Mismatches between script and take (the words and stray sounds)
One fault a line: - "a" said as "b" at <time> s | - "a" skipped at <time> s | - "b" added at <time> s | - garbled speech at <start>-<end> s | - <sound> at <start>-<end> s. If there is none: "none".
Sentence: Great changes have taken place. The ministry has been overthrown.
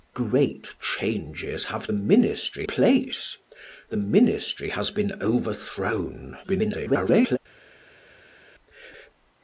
- "taken" said as "ministry" at 1.9 s
- garbled speech at 6.4-7.4 s